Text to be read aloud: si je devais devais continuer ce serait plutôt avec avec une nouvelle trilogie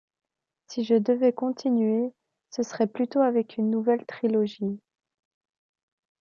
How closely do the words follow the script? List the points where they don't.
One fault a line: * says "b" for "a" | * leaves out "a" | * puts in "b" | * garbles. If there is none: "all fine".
* leaves out "devais"
* leaves out "avec"